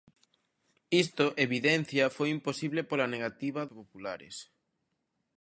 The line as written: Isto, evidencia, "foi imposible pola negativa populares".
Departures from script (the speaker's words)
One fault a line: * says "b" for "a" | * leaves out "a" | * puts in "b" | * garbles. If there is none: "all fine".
all fine